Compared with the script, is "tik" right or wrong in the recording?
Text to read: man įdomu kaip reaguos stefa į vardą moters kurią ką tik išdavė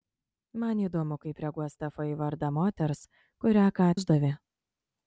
wrong